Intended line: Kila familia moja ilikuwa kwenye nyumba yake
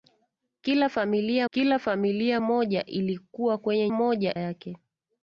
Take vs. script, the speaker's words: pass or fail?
fail